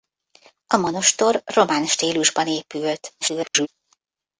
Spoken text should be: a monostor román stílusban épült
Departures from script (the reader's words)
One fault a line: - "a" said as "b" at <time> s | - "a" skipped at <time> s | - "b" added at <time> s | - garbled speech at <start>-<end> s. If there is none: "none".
- garbled speech at 3.2-3.7 s